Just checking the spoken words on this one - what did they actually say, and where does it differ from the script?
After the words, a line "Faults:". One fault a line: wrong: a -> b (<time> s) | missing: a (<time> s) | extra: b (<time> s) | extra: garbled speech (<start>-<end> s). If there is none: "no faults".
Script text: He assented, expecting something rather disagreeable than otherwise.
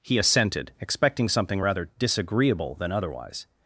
He assented, expecting something rather disagreeable than otherwise.
Faults:
no faults